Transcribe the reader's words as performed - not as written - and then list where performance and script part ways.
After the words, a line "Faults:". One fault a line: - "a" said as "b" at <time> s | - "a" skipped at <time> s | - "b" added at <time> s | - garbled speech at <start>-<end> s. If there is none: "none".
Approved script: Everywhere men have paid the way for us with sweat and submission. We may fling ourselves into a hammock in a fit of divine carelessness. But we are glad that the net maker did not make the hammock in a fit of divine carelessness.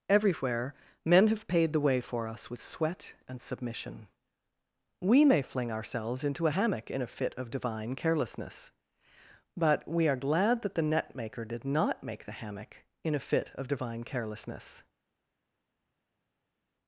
Everywhere men have paid the way for us with sweat and submission. We may fling ourselves into a hammock in a fit of divine carelessness. But we are glad that the net maker did not make the hammock in a fit of divine carelessness.
Faults:
none